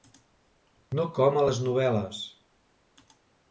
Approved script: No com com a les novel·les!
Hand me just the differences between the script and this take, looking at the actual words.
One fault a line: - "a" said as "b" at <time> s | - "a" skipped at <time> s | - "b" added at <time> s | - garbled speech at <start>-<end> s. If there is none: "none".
- "com" skipped at 1.4 s